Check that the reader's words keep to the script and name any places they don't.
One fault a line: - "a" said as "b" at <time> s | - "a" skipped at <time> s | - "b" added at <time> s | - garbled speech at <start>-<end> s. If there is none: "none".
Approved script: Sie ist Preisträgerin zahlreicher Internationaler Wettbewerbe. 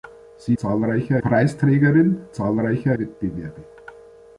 - "ist" said as "zahlreicher" at 0.6 s
- "Internationaler" skipped at 2.9 s